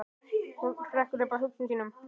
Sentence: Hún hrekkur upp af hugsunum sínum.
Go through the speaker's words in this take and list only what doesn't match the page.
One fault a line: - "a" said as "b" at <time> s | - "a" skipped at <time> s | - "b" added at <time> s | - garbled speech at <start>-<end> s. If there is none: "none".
none